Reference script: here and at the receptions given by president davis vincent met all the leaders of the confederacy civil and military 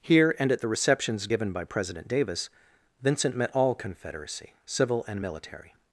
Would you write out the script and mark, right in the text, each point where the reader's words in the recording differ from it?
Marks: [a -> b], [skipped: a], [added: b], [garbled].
here and at the receptions given by president davis vincent met all [skipped: the leaders of the] confederacy civil and military